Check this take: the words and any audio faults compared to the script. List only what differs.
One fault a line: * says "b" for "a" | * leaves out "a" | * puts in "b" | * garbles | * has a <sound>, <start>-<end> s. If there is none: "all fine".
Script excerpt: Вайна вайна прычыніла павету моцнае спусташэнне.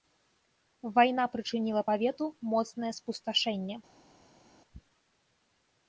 * leaves out "вайна"